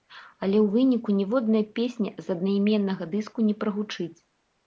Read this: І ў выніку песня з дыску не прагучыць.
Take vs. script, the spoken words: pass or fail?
fail